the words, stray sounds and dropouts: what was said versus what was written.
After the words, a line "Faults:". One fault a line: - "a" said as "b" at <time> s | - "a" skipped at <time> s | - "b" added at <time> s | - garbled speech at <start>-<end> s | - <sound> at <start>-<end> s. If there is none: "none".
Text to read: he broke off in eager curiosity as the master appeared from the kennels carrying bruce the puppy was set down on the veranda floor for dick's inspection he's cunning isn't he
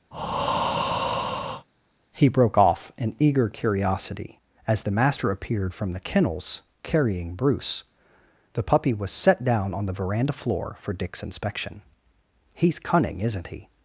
he broke off in eager curiosity as the master appeared from the kennels carrying bruce the puppy was set down on the veranda floor for dick's inspection he's cunning isn't he
Faults:
- breath at 0.1-1.7 s